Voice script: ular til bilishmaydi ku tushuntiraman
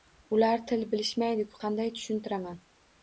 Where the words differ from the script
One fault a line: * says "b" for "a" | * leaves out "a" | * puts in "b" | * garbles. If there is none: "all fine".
* puts in "qanday"